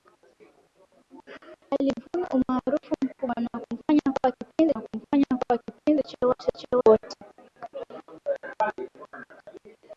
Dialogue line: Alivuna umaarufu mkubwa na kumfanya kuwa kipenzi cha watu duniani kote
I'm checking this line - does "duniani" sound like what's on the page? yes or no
no